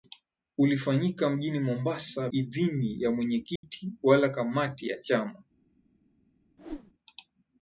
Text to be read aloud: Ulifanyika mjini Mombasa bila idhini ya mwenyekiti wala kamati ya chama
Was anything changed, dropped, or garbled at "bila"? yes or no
yes